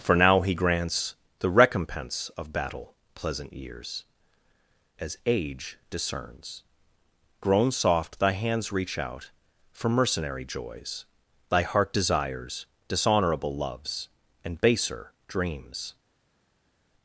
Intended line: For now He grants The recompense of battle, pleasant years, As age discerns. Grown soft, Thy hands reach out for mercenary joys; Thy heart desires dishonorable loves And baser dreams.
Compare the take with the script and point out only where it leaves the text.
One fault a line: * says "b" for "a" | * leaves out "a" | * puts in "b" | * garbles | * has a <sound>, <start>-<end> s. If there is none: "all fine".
all fine